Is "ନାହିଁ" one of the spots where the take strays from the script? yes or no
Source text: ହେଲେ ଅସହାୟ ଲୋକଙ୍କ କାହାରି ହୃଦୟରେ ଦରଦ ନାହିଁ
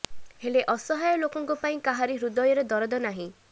no